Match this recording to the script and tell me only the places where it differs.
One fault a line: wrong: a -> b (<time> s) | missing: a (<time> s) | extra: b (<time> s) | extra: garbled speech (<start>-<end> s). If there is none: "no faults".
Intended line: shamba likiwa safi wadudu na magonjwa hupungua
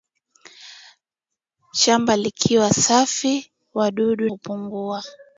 missing: na magonjwa (4.3 s)